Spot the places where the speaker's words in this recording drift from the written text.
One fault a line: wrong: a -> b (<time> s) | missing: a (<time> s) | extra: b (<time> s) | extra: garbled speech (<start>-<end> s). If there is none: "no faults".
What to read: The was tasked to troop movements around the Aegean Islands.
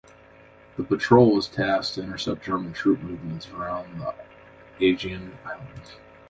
extra: patrol (0.8 s)
extra: intercept German (2.0 s)